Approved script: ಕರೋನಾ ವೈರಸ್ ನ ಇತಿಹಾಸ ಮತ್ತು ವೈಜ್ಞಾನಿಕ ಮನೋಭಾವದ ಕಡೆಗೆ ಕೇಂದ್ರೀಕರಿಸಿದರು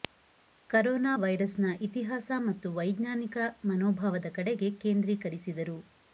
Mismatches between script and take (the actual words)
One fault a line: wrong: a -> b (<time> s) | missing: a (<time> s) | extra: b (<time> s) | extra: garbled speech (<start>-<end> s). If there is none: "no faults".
no faults